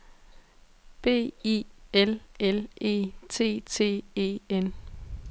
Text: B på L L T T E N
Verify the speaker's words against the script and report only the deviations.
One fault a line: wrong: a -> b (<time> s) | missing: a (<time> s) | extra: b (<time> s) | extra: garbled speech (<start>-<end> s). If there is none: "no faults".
wrong: på -> I (1.4 s)
extra: E (2.8 s)